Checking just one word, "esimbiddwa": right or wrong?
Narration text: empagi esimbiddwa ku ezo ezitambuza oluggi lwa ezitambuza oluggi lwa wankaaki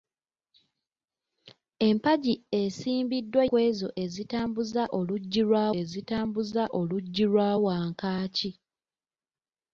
right